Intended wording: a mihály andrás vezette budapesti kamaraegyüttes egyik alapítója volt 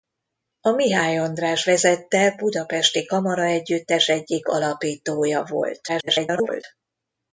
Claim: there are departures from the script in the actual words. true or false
true